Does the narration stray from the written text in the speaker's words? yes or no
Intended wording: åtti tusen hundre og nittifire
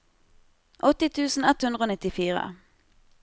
yes